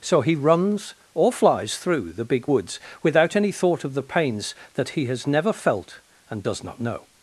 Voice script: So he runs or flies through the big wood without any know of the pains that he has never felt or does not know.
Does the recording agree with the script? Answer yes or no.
no